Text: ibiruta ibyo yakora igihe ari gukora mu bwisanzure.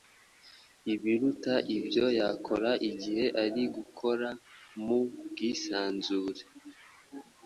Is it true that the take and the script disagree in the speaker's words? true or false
false